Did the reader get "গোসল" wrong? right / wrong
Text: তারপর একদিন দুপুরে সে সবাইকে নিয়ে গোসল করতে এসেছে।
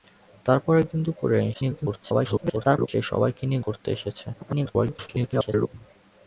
wrong